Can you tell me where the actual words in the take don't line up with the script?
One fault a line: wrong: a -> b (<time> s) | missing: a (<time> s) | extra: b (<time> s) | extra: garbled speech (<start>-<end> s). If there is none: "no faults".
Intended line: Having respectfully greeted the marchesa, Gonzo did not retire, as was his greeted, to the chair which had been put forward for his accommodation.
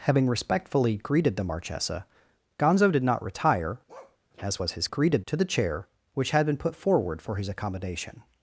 no faults